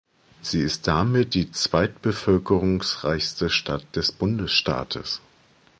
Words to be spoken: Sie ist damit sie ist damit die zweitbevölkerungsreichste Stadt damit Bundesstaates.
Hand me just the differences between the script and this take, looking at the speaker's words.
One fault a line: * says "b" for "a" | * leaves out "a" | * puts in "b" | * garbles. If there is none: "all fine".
* leaves out "sie ist damit"
* says "des" for "damit"